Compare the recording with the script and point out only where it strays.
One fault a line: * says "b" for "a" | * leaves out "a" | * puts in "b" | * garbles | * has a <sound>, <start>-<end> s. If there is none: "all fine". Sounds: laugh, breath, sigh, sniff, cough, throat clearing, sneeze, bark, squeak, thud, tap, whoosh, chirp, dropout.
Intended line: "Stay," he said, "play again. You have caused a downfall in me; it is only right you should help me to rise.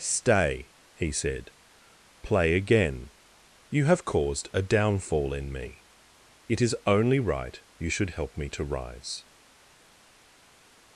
all fine